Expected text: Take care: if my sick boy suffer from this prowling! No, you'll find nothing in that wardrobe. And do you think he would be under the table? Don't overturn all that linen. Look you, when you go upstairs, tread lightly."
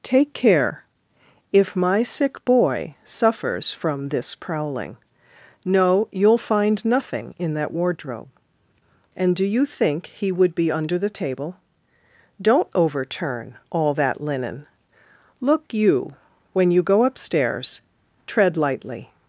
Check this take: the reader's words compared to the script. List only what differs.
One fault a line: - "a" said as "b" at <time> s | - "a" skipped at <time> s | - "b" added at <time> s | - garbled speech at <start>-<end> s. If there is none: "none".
- "suffer" said as "suffers" at 3.0 s